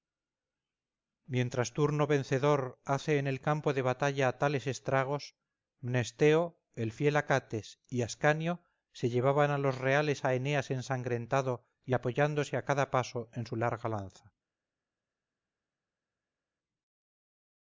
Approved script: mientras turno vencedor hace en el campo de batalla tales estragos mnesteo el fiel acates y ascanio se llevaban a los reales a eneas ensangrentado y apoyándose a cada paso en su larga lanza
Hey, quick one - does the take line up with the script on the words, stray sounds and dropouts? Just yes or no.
yes